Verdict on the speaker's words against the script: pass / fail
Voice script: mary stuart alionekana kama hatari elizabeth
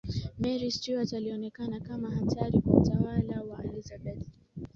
fail